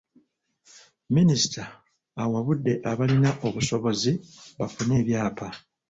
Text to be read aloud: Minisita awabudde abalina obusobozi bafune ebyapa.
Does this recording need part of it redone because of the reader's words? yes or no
no